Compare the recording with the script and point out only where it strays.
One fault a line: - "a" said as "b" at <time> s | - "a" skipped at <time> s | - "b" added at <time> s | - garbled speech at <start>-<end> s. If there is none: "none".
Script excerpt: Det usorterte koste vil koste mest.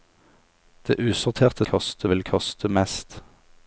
none